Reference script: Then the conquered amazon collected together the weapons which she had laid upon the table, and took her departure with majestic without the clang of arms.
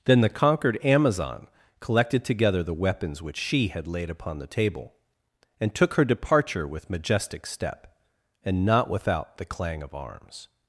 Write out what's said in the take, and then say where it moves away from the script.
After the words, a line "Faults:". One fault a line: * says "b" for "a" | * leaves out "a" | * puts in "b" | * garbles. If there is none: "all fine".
Then the conquered amazon collected together the weapons which she had laid upon the table, and took her departure with majestic step, and not without the clang of arms.
Faults:
* puts in "step and not"